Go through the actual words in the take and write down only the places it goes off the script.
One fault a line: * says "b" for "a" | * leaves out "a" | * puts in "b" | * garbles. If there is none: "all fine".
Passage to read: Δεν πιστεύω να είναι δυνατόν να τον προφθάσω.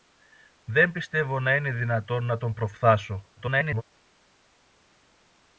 * garbles